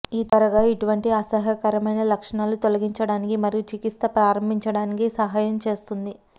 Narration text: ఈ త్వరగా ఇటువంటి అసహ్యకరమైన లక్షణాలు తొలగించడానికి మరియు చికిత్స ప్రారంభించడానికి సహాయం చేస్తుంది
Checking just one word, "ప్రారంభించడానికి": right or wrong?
right